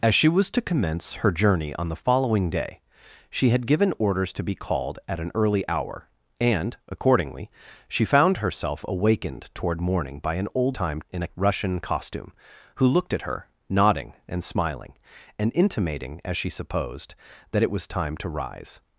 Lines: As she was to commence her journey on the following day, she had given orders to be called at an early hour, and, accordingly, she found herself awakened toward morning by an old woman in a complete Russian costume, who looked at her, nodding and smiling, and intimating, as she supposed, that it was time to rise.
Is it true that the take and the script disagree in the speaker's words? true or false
true